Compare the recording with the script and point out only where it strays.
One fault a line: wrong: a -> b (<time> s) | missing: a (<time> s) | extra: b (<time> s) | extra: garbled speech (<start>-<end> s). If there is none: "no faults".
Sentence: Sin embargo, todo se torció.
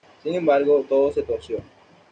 no faults